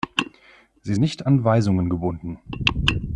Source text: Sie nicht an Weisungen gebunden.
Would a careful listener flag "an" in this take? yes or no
no